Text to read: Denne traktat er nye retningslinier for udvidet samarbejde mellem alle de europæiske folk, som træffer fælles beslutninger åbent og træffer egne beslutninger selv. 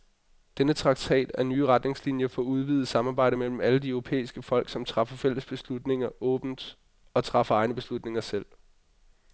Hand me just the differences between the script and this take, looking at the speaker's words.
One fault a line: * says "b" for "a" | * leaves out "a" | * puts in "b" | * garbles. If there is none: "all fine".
all fine